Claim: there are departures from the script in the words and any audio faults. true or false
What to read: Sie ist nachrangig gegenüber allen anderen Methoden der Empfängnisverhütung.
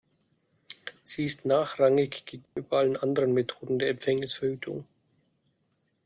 true